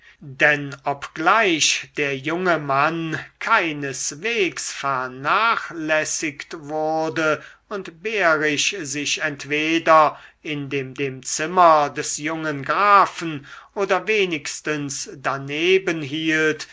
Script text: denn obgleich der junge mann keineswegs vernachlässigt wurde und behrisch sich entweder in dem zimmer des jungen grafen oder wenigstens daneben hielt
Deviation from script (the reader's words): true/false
true